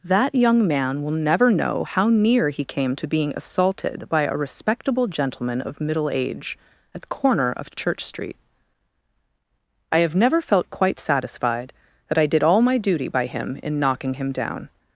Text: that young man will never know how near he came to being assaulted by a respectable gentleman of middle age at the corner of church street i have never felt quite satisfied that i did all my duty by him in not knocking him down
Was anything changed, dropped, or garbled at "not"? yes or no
yes